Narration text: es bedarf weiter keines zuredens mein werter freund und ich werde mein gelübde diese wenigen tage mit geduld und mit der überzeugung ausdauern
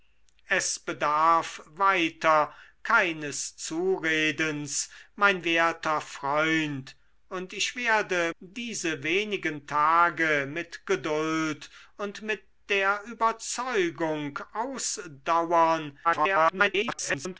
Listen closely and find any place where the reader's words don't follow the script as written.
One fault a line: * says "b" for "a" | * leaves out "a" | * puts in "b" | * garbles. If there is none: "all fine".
* leaves out "mein gelübde"
* garbles